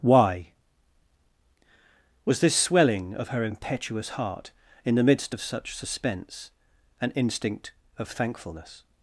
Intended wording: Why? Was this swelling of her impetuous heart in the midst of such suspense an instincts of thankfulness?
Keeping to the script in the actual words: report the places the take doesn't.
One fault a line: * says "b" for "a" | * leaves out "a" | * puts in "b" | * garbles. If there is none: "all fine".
* says "instinct" for "instincts"